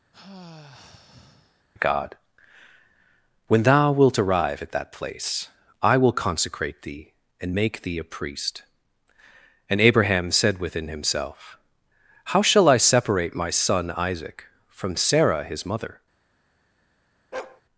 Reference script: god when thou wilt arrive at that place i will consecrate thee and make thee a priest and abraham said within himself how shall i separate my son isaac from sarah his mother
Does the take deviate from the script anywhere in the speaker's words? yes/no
no